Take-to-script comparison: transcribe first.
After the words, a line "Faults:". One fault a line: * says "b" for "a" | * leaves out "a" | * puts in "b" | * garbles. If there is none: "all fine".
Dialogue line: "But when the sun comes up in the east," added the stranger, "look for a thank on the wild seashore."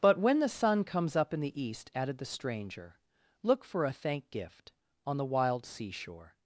"But when the sun comes up in the east," added the stranger, "look for a thank gift on the wild seashore."
Faults:
* puts in "gift"